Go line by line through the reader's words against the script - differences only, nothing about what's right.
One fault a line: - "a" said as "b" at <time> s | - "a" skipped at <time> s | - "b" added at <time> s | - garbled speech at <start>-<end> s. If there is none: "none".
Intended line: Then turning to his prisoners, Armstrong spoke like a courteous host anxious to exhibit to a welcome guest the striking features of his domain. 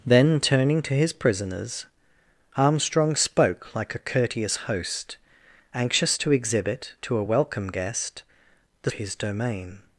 - "striking features of" skipped at 8.9 s